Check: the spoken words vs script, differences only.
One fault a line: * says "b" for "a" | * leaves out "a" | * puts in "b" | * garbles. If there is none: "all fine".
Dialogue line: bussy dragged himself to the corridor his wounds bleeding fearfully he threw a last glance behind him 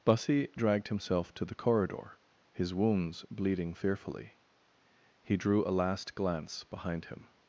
* says "drew" for "threw"